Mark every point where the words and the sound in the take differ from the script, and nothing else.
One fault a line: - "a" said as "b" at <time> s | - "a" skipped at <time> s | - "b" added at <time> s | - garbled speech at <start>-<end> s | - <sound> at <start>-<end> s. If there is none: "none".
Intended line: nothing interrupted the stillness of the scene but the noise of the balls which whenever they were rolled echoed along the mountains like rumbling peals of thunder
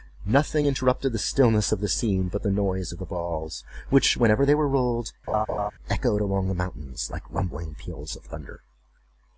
- laugh at 5.3-5.7 s